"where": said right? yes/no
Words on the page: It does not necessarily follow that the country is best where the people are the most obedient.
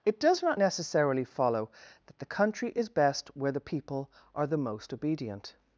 yes